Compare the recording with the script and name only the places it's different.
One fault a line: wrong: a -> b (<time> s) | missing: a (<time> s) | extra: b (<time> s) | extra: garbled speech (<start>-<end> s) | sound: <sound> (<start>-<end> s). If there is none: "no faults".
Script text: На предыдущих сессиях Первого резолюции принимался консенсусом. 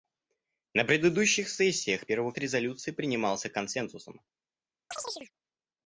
sound: chirp (4.9-5.3 s)